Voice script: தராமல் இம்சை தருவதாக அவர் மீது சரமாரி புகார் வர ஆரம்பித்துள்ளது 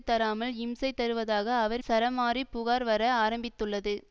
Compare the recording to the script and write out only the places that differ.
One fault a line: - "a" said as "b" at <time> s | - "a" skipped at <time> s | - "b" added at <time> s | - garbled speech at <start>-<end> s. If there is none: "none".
- "மீது" skipped at 1.8 s